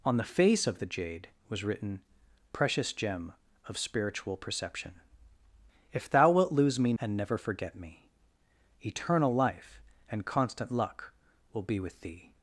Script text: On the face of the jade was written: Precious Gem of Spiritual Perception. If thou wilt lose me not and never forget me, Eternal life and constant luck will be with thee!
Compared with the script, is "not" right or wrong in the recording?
wrong